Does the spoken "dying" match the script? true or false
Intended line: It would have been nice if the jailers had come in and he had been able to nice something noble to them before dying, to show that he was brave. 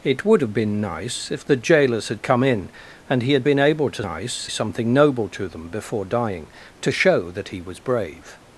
true